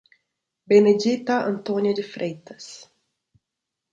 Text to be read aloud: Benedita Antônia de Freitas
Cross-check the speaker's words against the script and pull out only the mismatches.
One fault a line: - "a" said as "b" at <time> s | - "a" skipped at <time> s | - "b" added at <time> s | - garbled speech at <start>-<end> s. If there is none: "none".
none